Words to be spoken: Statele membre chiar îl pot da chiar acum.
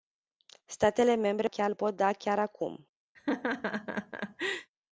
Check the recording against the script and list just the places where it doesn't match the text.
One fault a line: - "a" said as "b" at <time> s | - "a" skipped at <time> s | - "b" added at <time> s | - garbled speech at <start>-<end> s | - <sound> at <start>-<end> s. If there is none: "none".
- laugh at 3.1-4.7 s